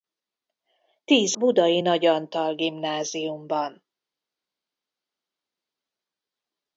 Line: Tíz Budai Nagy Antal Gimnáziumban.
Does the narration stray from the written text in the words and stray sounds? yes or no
no